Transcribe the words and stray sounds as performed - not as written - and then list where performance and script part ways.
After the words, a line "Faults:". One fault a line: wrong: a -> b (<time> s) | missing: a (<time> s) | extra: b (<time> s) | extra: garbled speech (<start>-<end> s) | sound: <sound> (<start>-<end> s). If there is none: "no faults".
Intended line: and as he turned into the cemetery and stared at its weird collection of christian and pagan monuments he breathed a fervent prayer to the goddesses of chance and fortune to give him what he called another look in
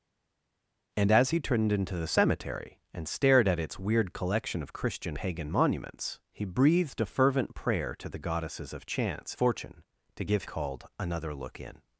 and as he turned into the cemetery and stared at its weird collection of christian pagan monuments he breathed a fervent prayer to the goddesses of chance fortune to give called another look in
Faults:
missing: and (5.2 s)
missing: and (9.4 s)
missing: him what he (10.4 s)